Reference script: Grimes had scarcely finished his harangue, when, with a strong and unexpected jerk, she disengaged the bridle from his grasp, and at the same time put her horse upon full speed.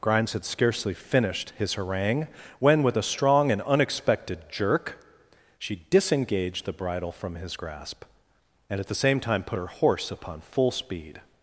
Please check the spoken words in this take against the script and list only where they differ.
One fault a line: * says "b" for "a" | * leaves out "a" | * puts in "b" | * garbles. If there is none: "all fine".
all fine